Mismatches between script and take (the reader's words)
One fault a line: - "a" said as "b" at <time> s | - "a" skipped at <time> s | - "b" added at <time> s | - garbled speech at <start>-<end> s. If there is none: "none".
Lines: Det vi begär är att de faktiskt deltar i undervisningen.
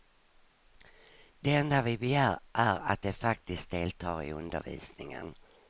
- "enda" added at 1.6 s